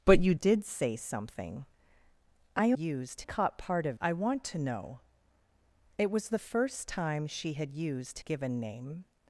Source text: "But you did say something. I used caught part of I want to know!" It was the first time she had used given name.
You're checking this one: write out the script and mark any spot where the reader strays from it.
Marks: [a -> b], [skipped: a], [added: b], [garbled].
"But you did say something. I used caught part of I want to know!" It was the first time she had used given name.